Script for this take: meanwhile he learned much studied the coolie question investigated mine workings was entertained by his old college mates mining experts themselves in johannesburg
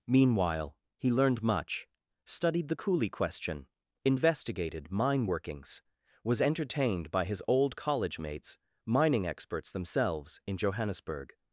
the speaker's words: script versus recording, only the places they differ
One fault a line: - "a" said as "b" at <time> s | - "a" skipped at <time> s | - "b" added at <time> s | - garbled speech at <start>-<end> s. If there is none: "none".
none